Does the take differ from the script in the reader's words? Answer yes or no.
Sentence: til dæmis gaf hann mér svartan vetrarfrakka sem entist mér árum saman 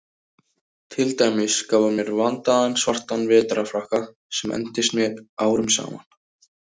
yes